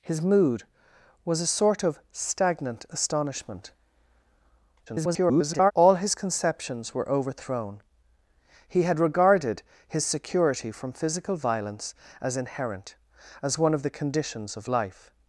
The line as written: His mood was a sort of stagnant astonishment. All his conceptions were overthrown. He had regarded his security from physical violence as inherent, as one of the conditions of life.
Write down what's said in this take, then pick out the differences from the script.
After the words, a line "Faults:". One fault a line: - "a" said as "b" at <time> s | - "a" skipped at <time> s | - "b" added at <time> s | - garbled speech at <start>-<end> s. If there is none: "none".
His mood was a sort of stagnant astonishment. [garbled] All his conceptions were overthrown. He had regarded his security from physical violence as inherent, as one of the conditions of life.
Faults:
- garbled speech at 4.9-5.7 s